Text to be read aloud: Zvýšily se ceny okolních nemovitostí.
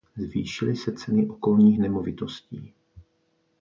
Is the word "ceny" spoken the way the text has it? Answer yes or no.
yes